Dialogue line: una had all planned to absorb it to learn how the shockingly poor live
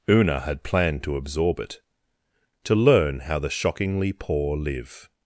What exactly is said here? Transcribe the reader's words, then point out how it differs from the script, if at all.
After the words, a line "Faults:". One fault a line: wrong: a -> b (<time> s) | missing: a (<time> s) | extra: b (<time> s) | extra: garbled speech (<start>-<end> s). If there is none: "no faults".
una had planned to absorb it to learn how the shockingly poor live
Faults:
missing: all (0.6 s)